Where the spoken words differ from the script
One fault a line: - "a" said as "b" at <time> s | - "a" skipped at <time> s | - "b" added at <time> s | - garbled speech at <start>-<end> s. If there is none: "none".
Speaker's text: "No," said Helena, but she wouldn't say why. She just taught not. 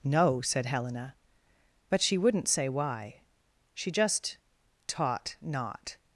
none